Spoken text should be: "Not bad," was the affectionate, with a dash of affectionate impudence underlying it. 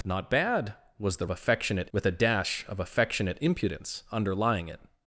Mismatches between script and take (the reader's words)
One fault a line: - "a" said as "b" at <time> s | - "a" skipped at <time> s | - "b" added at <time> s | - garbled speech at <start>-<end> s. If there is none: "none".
none